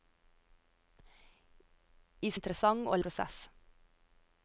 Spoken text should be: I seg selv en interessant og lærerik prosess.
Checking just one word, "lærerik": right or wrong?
wrong